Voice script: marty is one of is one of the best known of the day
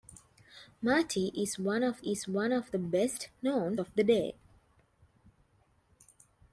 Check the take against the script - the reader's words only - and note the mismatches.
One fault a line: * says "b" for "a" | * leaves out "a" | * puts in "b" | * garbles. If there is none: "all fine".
all fine